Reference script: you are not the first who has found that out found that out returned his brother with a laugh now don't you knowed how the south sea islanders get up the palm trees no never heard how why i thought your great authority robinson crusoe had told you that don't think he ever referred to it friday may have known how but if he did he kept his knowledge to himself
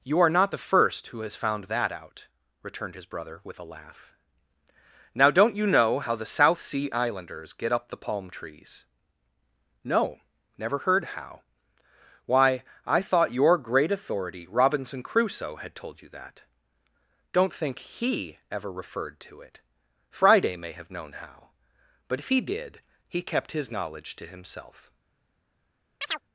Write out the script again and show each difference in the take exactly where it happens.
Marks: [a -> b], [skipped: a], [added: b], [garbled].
you are not the first who has found that out [skipped: found that out] returned his brother with a laugh now don't you [knowed -> know] how the south sea islanders get up the palm trees no never heard how why i thought your great authority robinson crusoe had told you that don't think he ever referred to it friday may have known how but if he did he kept his knowledge to himself